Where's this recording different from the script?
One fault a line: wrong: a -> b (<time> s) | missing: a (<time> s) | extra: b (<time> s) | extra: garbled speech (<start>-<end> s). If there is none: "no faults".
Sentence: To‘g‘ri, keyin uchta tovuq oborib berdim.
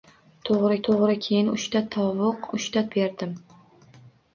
extra: to‘g‘ri (0.9 s)
wrong: oborib -> uchta (2.6 s)